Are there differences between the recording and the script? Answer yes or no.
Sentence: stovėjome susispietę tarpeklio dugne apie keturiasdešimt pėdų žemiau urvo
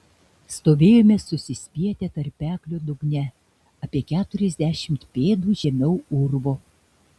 no